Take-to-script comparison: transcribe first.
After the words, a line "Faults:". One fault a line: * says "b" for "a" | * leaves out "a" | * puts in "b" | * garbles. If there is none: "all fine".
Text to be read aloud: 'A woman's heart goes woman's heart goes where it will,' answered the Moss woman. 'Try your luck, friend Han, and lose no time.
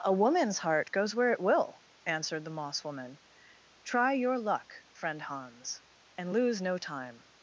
'A woman's heart goes where it will,' answered the Moss woman. 'Try your luck, friend Hans, and lose no time.
Faults:
* leaves out "woman's heart goes"
* says "Hans" for "Han"